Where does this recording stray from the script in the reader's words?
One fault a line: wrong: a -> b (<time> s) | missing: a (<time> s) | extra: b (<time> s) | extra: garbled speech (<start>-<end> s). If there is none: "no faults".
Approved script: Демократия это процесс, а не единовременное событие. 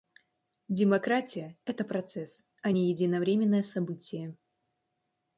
no faults